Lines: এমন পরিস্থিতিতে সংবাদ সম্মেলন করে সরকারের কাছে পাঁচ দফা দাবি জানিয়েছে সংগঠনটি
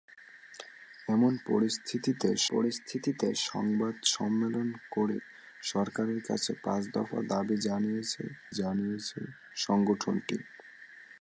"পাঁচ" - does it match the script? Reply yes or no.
yes